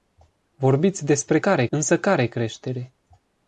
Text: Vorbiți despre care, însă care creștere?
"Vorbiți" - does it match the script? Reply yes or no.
yes